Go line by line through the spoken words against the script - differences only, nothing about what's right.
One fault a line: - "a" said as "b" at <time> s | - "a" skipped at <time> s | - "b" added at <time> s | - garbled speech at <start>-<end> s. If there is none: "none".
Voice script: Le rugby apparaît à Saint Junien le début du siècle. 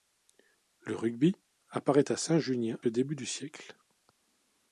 none